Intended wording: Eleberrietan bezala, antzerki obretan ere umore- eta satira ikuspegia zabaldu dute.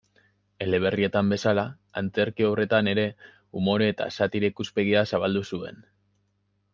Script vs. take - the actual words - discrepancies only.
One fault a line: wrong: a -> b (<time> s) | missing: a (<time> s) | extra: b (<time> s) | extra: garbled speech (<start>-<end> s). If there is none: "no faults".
wrong: dute -> zuen (5.5 s)